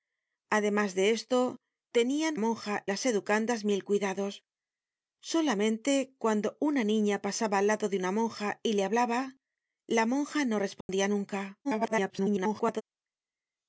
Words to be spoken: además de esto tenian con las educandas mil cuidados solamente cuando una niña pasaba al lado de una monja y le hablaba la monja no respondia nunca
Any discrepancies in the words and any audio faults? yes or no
yes